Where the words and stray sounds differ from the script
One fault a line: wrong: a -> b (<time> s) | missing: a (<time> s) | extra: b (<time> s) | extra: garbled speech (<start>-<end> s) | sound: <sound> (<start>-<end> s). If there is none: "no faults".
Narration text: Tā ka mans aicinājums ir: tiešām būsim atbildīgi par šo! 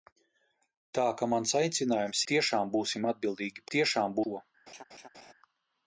missing: ir (2.2 s)
wrong: par -> tiešām (3.8 s)
sound: laugh (4.7-5.3 s)